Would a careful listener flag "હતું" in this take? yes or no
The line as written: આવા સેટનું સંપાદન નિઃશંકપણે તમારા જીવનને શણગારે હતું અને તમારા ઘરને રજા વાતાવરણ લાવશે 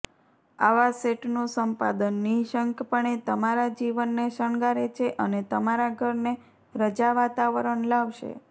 yes